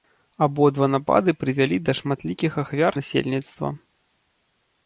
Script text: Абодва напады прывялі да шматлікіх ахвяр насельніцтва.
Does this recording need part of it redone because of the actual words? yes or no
no